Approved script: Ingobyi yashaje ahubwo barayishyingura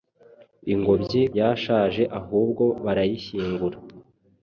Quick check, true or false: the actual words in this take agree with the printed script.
true